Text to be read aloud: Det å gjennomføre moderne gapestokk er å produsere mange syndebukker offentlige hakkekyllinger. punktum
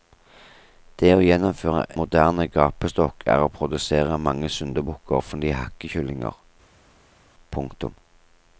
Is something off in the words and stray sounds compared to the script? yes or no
no